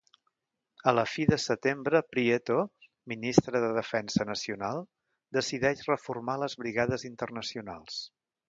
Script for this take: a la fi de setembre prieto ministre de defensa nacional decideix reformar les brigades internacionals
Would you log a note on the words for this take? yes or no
no